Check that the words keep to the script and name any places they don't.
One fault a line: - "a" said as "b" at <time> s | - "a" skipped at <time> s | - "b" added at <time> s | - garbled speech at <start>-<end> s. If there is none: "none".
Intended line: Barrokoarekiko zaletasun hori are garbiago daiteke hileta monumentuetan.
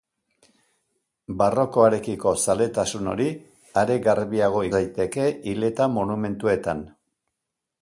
none